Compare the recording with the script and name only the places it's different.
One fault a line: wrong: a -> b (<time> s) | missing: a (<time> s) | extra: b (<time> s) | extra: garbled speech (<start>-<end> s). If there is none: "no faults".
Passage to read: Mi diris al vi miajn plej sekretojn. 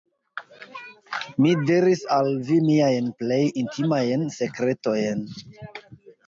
extra: intimajn (3.6 s)